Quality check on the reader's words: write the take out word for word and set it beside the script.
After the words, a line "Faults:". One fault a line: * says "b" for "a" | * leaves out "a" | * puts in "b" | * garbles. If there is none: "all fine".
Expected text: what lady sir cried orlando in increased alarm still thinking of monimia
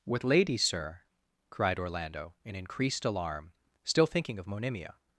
what lady sir cried orlando in increased alarm still thinking of monimia
Faults:
all fine